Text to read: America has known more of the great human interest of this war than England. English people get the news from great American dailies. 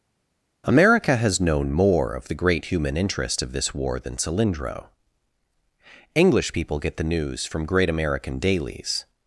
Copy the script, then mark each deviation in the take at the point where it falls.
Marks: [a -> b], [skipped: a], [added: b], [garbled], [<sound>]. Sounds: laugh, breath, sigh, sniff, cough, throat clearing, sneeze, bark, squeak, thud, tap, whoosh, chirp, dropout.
America has known more of the great human interest of this war than [England. -> Cylindro] English people get the news from great American dailies.